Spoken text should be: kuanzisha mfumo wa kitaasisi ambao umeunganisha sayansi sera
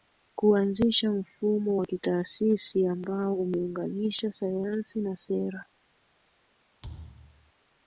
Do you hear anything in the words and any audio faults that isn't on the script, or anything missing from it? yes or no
yes